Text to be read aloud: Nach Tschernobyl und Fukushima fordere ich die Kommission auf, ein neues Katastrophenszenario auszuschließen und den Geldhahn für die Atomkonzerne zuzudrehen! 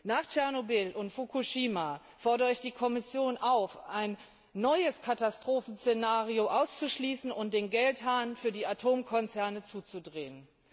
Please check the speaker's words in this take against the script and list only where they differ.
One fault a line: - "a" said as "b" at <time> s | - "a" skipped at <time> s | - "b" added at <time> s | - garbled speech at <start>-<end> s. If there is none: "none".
none